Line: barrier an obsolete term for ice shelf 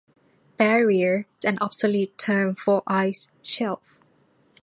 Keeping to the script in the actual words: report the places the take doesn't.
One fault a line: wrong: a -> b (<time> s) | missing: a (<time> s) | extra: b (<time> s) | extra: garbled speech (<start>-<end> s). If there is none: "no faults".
no faults